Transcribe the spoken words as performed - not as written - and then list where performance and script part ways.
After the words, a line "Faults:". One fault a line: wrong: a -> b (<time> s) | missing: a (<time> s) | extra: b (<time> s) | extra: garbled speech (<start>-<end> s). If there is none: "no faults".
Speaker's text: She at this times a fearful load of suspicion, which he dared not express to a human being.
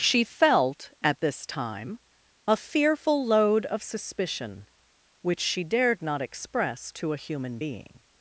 She felt at this time a fearful load of suspicion, which she dared not express to a human being.
Faults:
extra: felt (0.2 s)
wrong: times -> time (1.5 s)
wrong: he -> she (5.4 s)